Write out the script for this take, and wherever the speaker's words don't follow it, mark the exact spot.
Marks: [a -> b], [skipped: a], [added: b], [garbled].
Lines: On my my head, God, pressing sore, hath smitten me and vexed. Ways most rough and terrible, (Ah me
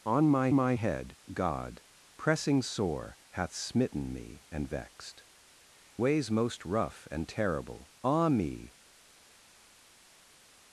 On my my head, God, pressing sore, hath smitten me and vexed. Ways most rough and terrible, (Ah me